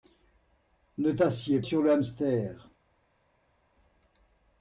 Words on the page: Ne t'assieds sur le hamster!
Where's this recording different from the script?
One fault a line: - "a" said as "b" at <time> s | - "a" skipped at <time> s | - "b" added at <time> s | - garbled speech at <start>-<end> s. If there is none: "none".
none